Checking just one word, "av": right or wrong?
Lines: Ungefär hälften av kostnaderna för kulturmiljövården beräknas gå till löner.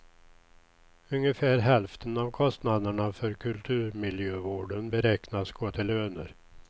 right